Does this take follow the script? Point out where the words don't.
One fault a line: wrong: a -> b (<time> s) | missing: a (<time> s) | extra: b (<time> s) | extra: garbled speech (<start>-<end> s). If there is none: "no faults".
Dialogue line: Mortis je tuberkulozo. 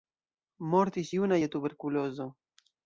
extra: juna (1.2 s)